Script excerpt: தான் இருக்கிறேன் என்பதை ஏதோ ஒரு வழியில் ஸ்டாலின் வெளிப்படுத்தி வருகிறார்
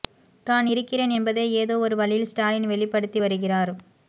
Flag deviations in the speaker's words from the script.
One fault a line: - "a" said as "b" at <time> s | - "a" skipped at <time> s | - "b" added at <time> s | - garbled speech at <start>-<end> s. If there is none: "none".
none